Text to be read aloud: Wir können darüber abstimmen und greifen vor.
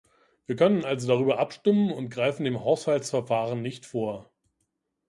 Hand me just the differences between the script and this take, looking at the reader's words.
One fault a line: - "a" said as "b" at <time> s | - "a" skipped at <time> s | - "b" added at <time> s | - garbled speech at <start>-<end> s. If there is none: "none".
- "also" added at 0.8 s
- "dem Haushaltsverfahren nicht" added at 2.4 s